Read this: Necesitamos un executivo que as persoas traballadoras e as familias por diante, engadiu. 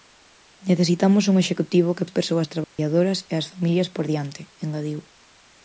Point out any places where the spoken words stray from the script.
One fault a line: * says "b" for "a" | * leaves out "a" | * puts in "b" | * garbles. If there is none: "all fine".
all fine